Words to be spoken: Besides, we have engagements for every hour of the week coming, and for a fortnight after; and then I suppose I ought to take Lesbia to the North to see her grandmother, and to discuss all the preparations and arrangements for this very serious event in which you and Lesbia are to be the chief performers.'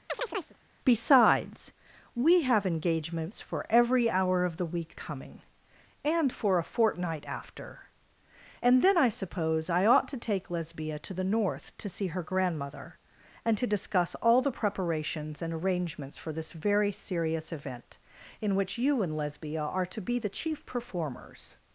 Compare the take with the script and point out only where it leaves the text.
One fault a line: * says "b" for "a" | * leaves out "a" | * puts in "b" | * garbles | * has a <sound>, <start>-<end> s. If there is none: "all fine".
* has a chirp, 0.1-0.6 s